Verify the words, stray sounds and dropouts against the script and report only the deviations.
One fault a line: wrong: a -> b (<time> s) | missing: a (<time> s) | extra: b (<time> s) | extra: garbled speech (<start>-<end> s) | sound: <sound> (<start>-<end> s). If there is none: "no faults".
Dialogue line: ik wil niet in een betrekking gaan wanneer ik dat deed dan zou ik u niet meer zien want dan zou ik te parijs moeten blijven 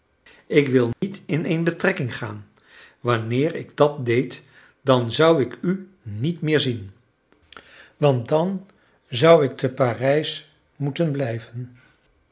sound: dropout (0.9-1.0 s)